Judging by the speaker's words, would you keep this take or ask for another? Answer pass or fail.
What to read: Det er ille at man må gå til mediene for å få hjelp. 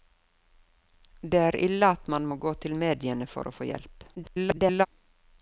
fail